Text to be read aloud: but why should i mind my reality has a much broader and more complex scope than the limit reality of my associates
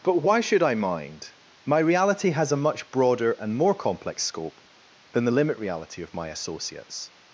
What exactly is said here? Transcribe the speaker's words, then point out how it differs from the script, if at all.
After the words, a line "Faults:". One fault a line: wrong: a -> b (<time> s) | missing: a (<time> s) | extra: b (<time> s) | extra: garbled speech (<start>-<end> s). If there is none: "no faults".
but why should i mind my reality has a much broader and more complex scope than the limit reality of my associates
Faults:
no faults